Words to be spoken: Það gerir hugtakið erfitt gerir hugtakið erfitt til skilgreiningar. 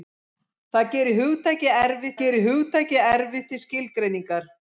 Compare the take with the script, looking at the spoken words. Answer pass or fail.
pass